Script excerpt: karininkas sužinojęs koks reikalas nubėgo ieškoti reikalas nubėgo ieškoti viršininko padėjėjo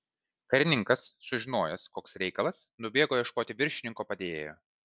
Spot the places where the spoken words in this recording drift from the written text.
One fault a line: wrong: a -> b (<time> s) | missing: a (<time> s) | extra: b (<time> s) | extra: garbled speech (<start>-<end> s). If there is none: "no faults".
missing: reikalas nubėgo ieškoti (3.6 s)